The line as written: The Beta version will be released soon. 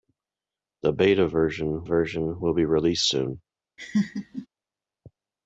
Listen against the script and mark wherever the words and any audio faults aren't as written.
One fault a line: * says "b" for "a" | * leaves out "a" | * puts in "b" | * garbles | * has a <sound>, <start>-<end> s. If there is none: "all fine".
* puts in "version"
* has a laugh, 3.8-4.5 s